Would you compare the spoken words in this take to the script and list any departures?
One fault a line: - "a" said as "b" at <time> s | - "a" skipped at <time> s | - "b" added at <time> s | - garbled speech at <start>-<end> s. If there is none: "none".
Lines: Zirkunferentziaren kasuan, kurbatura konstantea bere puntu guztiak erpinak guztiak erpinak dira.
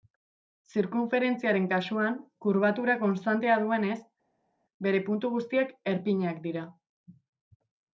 - "duenez" added at 3.7 s
- "guztiak erpinak" skipped at 6.4 s